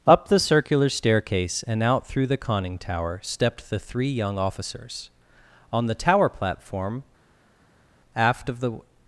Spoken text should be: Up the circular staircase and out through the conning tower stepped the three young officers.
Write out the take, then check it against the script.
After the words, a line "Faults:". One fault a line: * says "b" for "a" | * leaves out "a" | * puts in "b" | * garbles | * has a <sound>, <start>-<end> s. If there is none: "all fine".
Up the circular staircase and out through the conning tower stepped the three young officers. On the tower platform, aft of the
Faults:
* puts in "On the tower platform aft of the"